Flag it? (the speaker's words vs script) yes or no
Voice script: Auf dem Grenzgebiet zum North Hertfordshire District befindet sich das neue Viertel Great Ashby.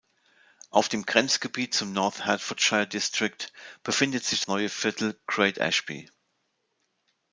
yes